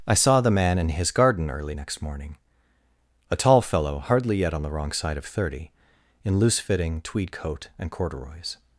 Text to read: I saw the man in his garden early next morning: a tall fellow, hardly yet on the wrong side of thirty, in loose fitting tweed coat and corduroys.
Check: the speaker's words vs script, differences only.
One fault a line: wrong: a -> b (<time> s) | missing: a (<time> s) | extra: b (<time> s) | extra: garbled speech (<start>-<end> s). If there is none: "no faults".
no faults